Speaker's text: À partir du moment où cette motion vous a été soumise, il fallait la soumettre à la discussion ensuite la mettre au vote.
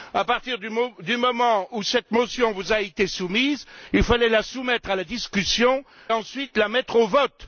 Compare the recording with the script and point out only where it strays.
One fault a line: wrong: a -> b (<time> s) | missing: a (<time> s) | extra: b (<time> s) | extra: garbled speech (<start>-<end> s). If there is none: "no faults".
no faults